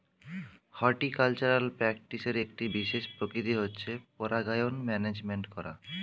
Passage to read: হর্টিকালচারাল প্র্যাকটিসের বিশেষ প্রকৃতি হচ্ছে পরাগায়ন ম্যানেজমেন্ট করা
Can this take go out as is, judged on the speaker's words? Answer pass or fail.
fail